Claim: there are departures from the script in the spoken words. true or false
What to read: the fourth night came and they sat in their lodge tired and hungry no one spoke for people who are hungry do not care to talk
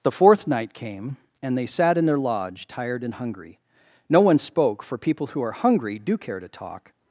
true